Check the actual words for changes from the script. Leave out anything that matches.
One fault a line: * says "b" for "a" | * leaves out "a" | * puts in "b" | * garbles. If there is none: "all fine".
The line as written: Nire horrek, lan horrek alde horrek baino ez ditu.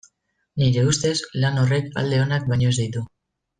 * says "ustez" for "horrek"
* says "onak" for "horrek"